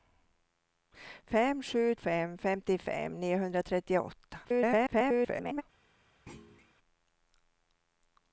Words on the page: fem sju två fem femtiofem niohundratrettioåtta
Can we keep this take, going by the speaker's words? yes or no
no